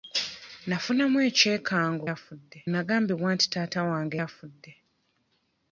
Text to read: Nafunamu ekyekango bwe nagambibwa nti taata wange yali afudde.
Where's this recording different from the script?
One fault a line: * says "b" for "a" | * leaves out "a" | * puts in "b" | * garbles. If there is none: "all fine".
* says "afudde" for "bwe"
* leaves out "yali"